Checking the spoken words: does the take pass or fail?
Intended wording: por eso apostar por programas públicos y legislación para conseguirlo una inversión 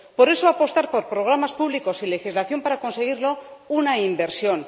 pass